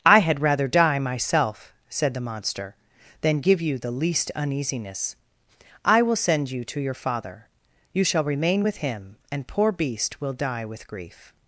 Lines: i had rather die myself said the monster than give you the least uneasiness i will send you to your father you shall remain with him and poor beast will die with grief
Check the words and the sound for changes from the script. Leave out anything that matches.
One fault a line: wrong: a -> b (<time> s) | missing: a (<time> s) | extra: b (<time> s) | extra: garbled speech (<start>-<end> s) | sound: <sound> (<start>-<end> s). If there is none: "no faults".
no faults